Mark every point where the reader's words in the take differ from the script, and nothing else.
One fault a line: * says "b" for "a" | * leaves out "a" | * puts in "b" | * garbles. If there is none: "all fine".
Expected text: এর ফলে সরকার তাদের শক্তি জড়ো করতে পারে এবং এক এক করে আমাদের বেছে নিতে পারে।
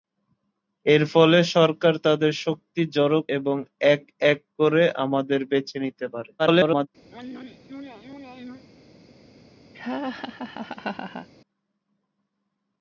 * leaves out "করতে পারে"
* garbles